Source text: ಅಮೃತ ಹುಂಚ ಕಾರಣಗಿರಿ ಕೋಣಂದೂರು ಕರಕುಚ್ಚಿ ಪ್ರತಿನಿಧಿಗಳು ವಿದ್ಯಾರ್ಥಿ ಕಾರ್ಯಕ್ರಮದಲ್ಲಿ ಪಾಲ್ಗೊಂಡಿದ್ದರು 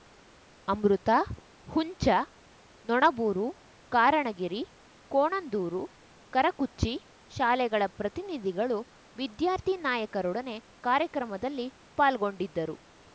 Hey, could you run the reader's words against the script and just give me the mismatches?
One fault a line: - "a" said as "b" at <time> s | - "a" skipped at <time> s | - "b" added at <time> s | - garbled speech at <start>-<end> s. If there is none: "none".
- "ನೊಣಬೂರು" added at 2.9 s
- "ಶಾಲೆಗಳ" added at 7.3 s
- "ನಾಯಕರೊಡನೆ" added at 9.9 s